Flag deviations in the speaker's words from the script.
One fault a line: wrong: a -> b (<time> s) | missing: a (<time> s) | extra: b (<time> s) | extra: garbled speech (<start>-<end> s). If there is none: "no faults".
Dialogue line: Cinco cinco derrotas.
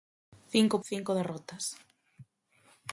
no faults